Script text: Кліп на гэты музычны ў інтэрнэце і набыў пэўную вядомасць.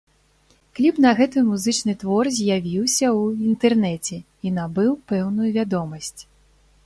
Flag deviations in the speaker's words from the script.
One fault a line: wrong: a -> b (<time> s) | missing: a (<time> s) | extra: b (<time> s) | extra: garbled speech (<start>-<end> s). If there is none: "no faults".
extra: твор з'явіўся (2.0 s)